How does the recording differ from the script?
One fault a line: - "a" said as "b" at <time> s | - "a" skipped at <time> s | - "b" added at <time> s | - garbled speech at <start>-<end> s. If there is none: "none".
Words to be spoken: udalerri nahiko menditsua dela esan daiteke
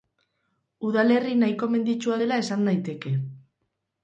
none